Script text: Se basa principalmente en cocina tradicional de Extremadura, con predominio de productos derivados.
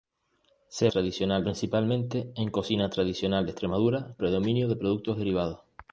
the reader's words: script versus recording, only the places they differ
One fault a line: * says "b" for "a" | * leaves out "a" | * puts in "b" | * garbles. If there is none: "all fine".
* says "tradicional" for "basa"
* leaves out "con"